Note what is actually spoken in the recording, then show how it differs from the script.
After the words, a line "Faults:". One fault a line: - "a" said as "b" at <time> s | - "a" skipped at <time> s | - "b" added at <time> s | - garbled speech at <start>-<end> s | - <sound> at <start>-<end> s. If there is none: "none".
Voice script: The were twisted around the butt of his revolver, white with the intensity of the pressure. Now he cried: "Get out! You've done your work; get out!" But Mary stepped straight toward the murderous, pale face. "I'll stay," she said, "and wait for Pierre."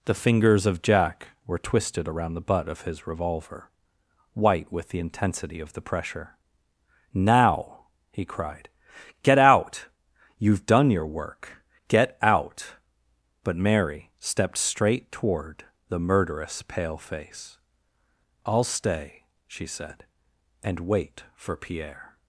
The fingers of Jack were twisted around the butt of his revolver, white with the intensity of the pressure. Now he cried: "Get out! You've done your work; get out!" But Mary stepped straight toward the murderous, pale face. "I'll stay," she said, "and wait for Pierre."
Faults:
- "fingers of Jack" added at 0.1 s